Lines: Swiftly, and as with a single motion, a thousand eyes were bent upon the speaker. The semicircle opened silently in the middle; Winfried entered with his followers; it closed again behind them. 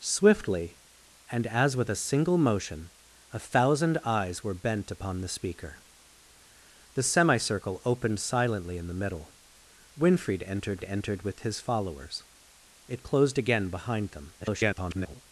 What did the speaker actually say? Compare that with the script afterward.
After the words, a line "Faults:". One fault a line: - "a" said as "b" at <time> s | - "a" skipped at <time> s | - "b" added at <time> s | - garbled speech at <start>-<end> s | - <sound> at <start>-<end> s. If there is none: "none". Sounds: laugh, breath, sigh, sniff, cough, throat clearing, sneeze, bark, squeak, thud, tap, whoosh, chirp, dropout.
Swiftly, and as with a single motion, a thousand eyes were bent upon the speaker. The semicircle opened silently in the middle; Winfried entered entered with his followers; it closed again behind them. [garbled]
Faults:
- "entered" added at 10.8 s
- garbled speech at 14.4-15.2 s